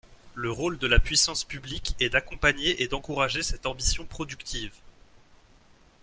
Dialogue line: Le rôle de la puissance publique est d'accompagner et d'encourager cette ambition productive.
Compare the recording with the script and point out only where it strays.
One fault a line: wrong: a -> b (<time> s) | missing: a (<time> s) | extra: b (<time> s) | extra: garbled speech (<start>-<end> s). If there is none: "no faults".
no faults